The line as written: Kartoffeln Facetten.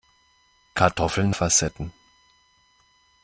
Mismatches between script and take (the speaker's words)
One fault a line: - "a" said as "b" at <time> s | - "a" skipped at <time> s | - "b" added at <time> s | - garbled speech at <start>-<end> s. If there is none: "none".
none